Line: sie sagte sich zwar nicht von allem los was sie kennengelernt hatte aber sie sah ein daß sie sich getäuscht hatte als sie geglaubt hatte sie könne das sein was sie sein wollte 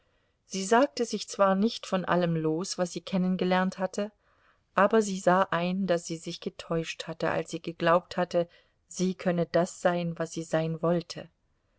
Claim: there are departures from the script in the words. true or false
false